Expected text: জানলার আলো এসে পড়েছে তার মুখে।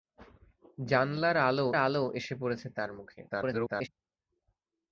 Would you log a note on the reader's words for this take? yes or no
yes